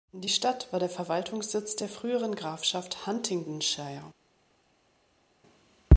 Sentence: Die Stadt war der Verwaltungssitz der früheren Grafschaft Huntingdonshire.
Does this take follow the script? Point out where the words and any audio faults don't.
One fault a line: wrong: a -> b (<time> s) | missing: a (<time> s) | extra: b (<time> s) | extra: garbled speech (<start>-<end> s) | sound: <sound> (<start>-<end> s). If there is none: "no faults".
no faults